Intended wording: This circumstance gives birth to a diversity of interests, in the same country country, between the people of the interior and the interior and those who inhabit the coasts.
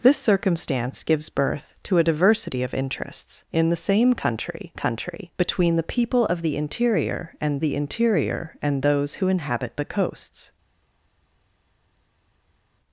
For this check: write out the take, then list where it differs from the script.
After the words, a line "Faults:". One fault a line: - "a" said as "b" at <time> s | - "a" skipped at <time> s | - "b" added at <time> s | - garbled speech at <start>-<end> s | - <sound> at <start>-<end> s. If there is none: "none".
This circumstance gives birth to a diversity of interests, in the same country country, between the people of the interior and the interior and those who inhabit the coasts.
Faults:
none